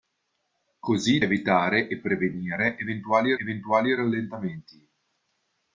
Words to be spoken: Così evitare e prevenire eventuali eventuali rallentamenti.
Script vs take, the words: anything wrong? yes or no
no